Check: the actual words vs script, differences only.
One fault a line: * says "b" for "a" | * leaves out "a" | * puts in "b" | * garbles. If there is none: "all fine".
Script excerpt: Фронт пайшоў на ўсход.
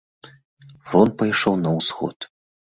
all fine